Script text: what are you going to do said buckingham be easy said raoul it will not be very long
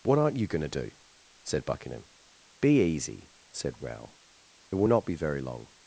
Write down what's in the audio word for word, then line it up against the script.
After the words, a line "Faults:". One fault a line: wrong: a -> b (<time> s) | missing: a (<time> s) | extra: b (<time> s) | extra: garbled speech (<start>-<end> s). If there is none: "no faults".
what aren't you going to do said buckingham be easy said raoul it will not be very long
Faults:
wrong: are -> aren't (0.2 s)